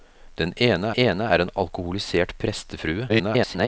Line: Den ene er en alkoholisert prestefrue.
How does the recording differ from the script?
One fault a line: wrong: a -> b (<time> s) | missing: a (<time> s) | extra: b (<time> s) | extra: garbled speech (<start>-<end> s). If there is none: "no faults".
extra: ene (0.9 s)
extra: garbled speech (3.1-3.7 s)